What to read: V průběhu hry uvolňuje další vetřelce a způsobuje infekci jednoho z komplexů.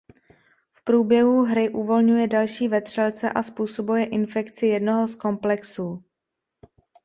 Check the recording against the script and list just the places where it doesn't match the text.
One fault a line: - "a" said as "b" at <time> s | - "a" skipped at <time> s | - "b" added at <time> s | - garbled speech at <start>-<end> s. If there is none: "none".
none